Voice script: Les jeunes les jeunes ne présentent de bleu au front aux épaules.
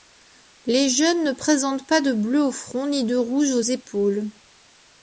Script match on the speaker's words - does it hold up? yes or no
no